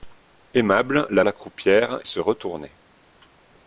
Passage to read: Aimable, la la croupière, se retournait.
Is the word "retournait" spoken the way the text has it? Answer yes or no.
yes